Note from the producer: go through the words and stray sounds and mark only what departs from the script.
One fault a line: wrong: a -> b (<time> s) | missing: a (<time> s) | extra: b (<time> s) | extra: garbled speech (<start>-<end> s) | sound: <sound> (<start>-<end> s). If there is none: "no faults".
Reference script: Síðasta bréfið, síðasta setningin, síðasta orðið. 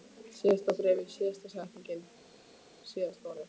no faults